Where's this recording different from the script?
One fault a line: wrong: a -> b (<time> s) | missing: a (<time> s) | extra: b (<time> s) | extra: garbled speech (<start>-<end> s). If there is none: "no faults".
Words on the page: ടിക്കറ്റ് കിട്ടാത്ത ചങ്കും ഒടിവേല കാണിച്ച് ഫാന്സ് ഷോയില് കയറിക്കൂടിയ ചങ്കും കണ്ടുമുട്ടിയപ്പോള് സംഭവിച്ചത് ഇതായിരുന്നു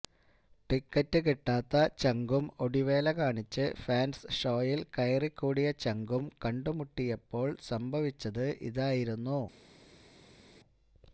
no faults